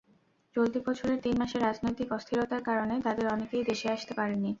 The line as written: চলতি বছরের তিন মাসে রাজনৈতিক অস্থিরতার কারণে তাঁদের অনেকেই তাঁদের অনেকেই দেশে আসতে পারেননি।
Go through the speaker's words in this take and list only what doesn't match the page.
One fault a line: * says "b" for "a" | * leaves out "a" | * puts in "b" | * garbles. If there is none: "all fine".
* leaves out "তাঁদের অনেকেই"